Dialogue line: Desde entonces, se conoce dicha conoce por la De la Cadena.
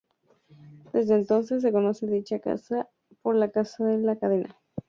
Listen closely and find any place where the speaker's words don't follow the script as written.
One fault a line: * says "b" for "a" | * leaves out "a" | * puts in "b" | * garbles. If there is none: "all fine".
* says "casa" for "conoce"
* puts in "Casa"